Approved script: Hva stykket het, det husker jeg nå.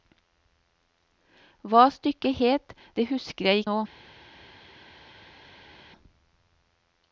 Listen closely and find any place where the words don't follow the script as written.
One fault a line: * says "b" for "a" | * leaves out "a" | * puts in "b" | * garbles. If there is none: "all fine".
all fine